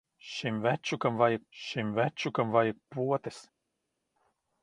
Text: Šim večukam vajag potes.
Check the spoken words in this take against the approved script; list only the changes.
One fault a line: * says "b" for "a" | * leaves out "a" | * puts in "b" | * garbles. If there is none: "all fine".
* puts in "šim večukam vajag"